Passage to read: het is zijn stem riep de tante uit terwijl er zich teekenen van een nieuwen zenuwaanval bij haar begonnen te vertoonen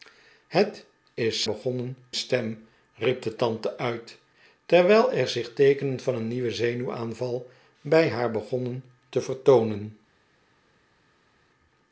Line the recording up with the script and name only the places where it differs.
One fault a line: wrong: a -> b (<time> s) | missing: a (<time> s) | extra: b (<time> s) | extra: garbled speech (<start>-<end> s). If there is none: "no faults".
wrong: zijn -> begonnen (1.4 s)